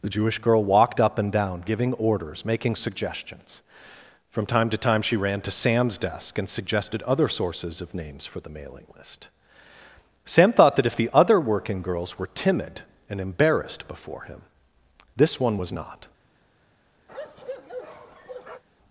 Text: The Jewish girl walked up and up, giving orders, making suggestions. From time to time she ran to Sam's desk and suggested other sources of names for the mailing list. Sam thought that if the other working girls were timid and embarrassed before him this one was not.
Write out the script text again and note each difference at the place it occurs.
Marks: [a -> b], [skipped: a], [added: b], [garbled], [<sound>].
The Jewish girl walked up and [up, -> down] giving orders, making suggestions. From time to time she ran to Sam's desk and suggested other sources of names for the mailing list. Sam thought that if the other working girls were timid and embarrassed before him this one was not. [bark]